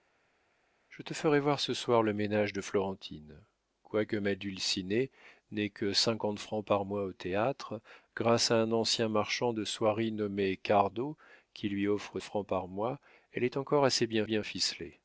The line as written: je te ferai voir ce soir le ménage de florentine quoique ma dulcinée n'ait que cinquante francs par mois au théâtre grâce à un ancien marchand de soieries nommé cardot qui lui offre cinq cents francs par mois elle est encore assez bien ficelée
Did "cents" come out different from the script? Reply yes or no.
yes